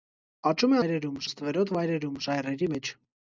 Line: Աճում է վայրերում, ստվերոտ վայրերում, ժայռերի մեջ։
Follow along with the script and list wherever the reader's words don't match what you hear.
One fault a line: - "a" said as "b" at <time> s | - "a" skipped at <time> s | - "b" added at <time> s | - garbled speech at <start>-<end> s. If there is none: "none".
none